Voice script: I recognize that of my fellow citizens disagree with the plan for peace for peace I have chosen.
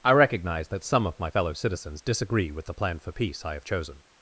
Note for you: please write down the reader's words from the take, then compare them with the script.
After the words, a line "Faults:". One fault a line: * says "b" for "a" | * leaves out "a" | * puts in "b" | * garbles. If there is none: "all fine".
I recognize that some of my fellow citizens disagree with the plan for peace I have chosen.
Faults:
* puts in "some"
* leaves out "for peace"